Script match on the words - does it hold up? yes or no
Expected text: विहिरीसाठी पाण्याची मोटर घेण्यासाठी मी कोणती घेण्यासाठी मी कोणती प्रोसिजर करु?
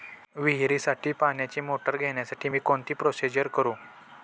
no